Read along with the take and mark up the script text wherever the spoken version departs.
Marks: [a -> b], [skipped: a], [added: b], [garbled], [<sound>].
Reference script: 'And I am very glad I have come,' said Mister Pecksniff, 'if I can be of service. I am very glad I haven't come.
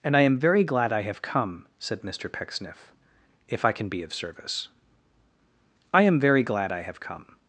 'And I am very glad I have come,' said Mister Pecksniff, 'if I can be of service. I am very glad I [haven't -> have] come.